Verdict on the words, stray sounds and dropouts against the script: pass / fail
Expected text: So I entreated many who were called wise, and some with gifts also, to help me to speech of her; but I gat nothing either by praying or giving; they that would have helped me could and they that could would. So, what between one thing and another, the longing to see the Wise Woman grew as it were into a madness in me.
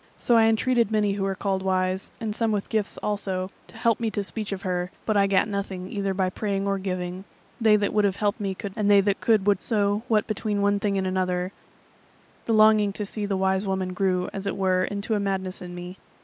pass